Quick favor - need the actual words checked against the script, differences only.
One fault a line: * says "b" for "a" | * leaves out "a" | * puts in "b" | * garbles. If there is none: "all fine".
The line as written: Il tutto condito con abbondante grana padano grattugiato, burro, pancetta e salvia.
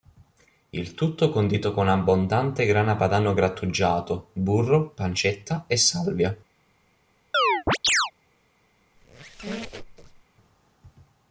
all fine